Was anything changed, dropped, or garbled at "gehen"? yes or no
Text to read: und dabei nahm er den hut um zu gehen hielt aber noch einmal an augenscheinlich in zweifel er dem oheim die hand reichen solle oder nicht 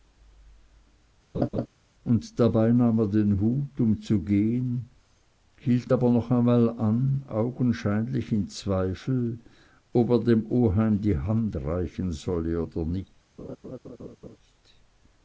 no